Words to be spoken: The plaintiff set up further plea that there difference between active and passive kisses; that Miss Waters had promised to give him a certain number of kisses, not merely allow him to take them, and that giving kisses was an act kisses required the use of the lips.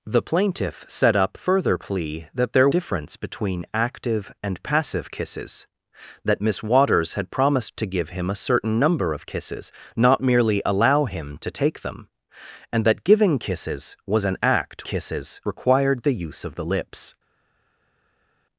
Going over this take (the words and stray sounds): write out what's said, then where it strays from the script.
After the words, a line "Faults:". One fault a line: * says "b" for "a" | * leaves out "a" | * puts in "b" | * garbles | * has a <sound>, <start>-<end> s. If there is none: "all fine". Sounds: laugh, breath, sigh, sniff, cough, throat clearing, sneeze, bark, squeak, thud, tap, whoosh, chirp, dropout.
The plaintiff set up further plea that there difference between active and passive kisses; that Miss Waters had promised to give him a certain number of kisses, not merely allow him to take them, and that giving kisses was an act kisses required the use of the lips.
Faults:
all fine